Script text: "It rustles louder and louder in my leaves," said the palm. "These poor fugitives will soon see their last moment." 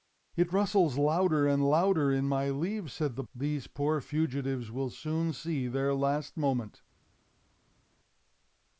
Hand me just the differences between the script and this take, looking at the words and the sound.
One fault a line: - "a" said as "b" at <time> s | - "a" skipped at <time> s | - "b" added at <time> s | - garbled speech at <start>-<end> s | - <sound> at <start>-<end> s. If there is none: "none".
- "palm" skipped at 3.2 s